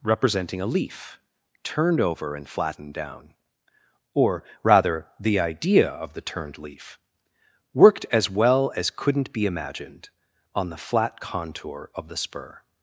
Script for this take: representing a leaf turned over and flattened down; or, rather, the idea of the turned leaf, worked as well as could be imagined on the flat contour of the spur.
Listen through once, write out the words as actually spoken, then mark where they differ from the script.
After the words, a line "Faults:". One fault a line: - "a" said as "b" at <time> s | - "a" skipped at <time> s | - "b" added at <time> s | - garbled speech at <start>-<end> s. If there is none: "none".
representing a leaf turned over and flattened down; or, rather, the idea of the turned leaf, worked as well as couldn't be imagined on the flat contour of the spur.
Faults:
- "could" said as "couldn't" at 8.9 s